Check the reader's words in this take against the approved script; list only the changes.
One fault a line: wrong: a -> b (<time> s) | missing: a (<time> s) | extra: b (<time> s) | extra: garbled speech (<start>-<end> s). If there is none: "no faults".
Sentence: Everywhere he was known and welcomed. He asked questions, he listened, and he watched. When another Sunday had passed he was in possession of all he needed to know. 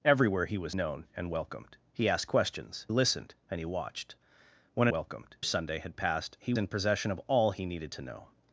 missing: he (2.9 s)
wrong: another -> welcomed (4.9 s)
missing: was (6.5 s)